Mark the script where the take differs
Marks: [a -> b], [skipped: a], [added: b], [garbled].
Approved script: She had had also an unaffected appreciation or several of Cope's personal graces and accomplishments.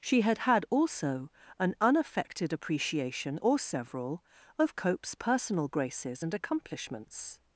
She had had also an unaffected appreciation or several of Cope's personal graces and accomplishments.